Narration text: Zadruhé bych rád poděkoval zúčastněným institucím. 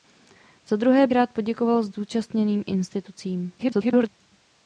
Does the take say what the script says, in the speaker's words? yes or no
no